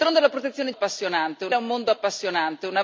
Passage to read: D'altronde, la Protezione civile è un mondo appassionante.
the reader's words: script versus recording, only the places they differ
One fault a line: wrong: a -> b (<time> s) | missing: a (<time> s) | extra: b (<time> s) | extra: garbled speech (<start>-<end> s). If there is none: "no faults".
wrong: civile -> appassionante (0.7 s)